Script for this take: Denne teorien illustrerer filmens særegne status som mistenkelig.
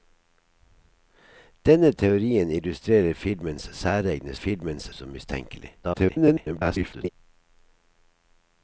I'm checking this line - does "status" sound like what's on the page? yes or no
no